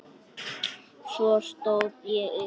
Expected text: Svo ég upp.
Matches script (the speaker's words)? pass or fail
fail